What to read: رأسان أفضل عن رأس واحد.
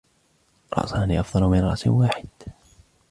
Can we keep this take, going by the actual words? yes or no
no